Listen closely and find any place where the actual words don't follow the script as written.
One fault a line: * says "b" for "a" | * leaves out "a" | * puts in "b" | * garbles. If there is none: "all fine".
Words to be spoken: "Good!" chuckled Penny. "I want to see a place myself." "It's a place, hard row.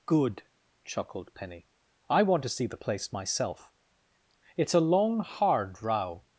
* says "the" for "a"
* says "long" for "place"